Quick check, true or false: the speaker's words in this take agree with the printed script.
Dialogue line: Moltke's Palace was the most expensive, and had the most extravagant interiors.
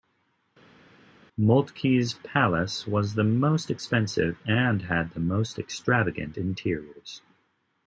true